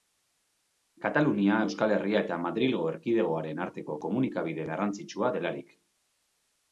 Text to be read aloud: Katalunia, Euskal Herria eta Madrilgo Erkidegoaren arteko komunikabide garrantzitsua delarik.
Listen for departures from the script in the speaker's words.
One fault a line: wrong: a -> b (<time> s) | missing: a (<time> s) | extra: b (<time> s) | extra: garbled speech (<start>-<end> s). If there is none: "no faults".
no faults